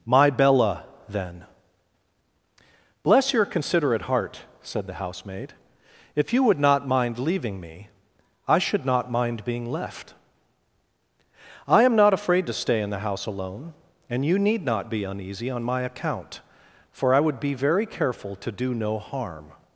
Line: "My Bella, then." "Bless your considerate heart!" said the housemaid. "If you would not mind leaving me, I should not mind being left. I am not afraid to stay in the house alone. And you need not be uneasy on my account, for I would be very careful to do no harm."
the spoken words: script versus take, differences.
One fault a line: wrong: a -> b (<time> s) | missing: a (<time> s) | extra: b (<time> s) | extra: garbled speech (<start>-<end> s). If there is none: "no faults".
no faults